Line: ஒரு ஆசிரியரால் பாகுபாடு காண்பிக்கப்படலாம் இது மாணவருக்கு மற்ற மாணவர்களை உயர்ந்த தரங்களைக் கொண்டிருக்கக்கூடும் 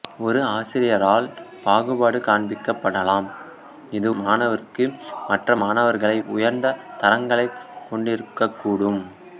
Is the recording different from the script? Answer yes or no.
no